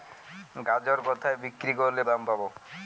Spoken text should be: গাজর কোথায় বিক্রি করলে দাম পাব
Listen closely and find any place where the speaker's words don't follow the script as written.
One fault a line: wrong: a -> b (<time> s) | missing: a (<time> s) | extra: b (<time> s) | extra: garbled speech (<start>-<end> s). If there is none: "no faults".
no faults